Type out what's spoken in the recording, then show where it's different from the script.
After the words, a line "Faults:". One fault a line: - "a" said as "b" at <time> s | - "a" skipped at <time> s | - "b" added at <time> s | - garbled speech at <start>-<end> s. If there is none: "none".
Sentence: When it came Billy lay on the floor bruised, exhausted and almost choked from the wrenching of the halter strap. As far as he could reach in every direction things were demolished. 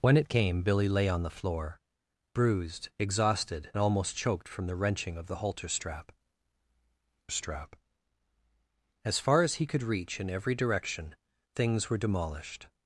When it came Billy lay on the floor bruised, exhausted and almost choked from the wrenching of the halter strap strap. As far as he could reach in every direction things were demolished.
Faults:
- "strap" added at 7.3 s